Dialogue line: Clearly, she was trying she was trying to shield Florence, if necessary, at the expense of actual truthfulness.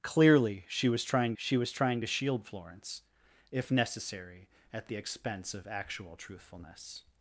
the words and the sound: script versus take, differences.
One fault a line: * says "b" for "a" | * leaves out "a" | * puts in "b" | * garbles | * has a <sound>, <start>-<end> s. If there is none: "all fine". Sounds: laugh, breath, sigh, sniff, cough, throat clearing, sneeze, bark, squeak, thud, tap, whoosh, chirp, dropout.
all fine